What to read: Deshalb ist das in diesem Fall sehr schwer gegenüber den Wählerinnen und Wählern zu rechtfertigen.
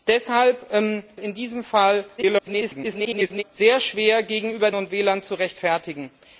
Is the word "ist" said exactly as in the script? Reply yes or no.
no